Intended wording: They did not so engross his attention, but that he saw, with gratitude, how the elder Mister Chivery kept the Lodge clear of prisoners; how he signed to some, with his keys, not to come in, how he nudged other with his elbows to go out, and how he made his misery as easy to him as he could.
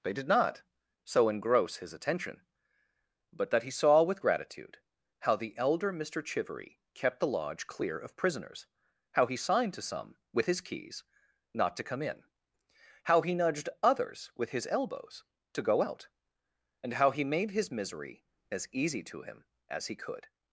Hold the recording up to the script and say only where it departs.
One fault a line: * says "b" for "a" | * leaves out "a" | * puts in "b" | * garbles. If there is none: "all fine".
* says "others" for "other"